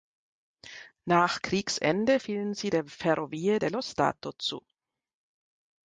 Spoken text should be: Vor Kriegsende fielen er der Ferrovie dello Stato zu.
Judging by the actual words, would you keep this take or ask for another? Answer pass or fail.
fail